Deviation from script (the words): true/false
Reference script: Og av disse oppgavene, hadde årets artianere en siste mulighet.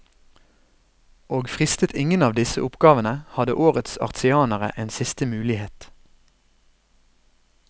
true